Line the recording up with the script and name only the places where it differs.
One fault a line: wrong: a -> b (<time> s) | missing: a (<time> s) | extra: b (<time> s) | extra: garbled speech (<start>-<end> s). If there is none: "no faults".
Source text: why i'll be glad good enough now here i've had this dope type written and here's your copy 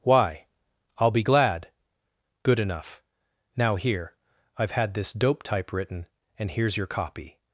no faults